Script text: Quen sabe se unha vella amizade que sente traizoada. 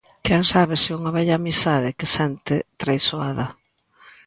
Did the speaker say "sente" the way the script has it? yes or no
yes